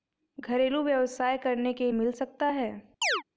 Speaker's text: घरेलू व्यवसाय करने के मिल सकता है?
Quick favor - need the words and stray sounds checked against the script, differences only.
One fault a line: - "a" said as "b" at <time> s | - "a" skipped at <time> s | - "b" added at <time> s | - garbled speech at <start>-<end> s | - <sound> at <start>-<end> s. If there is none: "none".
- chirp at 3.0-3.2 s